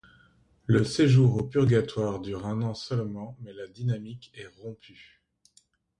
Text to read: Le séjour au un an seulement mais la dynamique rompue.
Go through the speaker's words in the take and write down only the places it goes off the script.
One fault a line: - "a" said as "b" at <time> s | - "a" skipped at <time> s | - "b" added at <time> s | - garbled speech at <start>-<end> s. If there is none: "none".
- "purgatoire dure" added at 1.4 s
- "est" added at 4.3 s